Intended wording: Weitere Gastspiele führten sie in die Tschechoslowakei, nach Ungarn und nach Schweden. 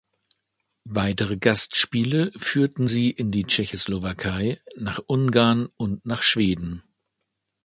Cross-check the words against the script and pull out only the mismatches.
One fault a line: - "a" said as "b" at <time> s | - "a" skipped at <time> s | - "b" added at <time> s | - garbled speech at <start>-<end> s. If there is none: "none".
none